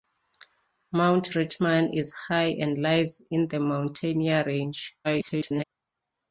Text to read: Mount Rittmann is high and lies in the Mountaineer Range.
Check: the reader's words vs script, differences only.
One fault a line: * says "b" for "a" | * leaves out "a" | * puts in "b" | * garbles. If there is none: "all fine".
* garbles